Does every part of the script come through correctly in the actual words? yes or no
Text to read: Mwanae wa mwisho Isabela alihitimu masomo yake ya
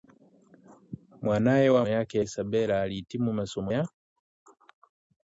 no